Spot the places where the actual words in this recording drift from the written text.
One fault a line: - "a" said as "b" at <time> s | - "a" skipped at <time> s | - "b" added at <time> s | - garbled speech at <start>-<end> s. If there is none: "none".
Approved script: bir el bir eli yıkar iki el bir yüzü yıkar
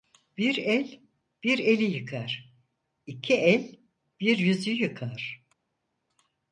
none